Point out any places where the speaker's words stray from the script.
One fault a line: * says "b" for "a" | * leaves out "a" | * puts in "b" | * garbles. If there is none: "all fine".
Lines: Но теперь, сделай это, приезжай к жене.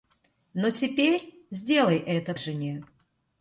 * leaves out "приезжай"